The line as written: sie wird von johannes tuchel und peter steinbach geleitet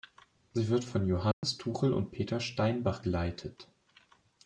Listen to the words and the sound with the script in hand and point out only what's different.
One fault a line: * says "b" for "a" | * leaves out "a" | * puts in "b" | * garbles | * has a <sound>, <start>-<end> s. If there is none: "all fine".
* has a dropout, 1.3-1.4 s